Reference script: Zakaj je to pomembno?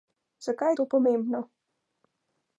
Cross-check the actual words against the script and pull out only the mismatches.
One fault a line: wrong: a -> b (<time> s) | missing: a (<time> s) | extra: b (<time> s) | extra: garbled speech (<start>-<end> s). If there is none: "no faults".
no faults